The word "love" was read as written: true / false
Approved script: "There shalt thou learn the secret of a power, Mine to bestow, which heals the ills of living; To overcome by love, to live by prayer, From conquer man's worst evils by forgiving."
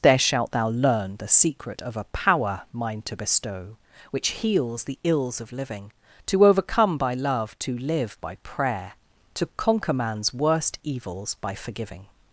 true